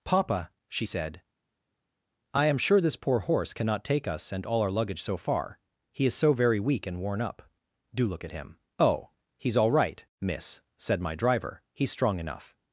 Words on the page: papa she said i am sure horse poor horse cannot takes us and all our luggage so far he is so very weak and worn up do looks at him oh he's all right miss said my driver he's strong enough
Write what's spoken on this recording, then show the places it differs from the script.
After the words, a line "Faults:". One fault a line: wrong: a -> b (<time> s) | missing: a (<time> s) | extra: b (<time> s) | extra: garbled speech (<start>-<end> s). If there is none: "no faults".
papa she said i am sure this poor horse cannot take us and all our luggage so far he is so very weak and worn up do look at him oh he's all right miss said my driver he's strong enough
Faults:
wrong: horse -> this (2.8 s)
wrong: takes -> take (3.8 s)
wrong: looks -> look (8.1 s)